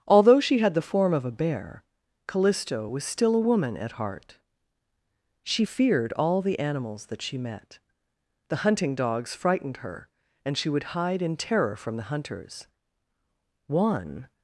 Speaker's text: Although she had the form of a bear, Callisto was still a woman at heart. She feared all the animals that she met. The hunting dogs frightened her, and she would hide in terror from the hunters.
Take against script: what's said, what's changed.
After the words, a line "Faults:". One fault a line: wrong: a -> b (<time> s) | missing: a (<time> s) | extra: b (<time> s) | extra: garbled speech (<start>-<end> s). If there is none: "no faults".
Although she had the form of a bear, Callisto was still a woman at heart. She feared all the animals that she met. The hunting dogs frightened her, and she would hide in terror from the hunters. One
Faults:
extra: One (13.7 s)